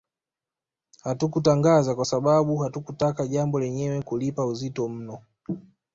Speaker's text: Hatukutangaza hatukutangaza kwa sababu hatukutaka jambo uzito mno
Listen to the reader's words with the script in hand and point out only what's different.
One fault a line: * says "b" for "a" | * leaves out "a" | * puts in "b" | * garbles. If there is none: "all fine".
* leaves out "hatukutangaza"
* puts in "lenyewe kulipa"